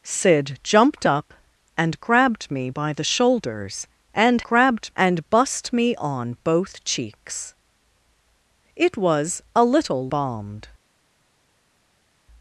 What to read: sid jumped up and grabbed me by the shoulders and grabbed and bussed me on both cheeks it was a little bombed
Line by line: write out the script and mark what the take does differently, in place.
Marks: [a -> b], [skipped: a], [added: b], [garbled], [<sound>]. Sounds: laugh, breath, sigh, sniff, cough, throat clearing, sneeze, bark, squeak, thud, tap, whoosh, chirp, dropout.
sid jumped up and grabbed me by the shoulders and grabbed and bussed me on both cheeks it was a little bombed